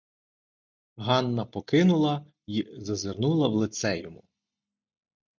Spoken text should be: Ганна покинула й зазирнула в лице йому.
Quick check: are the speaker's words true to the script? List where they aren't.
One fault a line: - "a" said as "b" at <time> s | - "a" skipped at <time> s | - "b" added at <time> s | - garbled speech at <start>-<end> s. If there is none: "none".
none